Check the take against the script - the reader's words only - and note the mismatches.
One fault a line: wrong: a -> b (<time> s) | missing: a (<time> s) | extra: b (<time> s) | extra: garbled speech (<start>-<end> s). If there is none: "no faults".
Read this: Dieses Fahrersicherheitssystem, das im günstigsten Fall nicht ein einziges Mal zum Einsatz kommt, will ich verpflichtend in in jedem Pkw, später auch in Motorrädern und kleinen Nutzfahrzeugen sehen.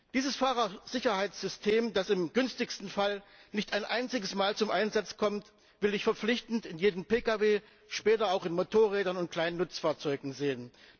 missing: in (6.8 s)